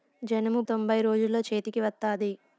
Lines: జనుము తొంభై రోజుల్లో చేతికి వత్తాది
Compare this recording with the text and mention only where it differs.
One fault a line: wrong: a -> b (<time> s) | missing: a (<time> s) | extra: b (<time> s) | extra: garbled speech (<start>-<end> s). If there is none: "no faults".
no faults